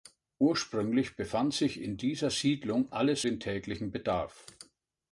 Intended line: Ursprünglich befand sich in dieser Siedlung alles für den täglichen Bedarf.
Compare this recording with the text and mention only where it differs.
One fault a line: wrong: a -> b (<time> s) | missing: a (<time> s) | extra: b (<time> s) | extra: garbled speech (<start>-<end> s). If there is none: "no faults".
missing: für (3.2 s)